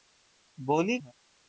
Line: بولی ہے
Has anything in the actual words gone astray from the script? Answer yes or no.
no